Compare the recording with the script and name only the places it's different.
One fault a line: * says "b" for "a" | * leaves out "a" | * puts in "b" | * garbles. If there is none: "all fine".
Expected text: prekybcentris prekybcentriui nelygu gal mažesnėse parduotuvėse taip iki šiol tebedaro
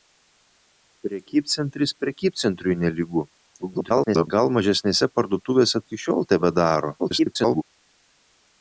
* garbles
* leaves out "taip"
* garbles